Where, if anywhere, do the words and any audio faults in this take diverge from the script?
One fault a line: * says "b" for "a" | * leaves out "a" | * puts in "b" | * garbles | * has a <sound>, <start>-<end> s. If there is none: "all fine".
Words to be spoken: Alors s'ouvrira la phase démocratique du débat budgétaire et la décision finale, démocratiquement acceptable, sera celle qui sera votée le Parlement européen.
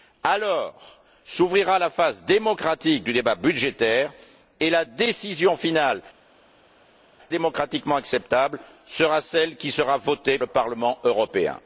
all fine